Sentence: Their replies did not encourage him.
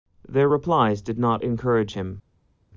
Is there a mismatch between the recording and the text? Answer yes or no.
no